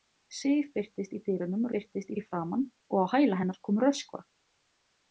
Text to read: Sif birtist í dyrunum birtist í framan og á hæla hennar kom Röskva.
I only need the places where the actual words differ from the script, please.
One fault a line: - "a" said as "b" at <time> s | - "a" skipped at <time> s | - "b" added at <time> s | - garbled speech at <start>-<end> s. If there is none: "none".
none